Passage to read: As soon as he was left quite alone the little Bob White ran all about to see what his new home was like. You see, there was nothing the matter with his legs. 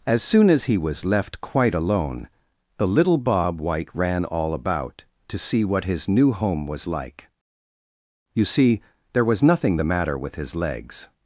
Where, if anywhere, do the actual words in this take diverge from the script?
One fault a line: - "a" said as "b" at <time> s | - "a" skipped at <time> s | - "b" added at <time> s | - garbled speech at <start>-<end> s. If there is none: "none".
none